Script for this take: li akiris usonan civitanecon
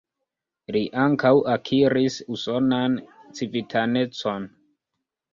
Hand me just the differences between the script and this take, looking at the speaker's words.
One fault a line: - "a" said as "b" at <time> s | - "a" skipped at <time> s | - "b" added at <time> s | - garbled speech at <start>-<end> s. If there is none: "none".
- "ankaŭ" added at 1.0 s